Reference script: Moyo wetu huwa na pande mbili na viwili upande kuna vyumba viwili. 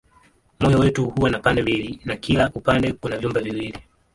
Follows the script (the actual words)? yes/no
no